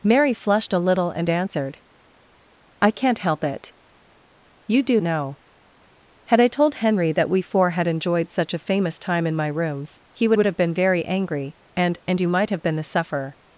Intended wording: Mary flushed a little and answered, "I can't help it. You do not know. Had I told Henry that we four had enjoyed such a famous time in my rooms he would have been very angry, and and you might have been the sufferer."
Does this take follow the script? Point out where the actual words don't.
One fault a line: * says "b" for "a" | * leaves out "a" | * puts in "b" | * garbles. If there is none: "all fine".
* leaves out "not"
* puts in "would"